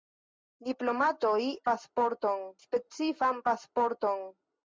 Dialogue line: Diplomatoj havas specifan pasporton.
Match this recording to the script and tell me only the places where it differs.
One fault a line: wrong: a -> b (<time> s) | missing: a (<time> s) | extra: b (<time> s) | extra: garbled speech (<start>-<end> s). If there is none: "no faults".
wrong: havas -> pasporton (1.7 s)